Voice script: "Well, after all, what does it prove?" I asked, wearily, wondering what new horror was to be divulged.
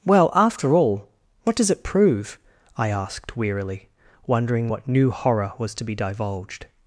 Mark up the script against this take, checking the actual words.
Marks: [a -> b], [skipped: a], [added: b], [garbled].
"Well, after all, what does it prove?" I asked, wearily, wondering what new horror was to be divulged.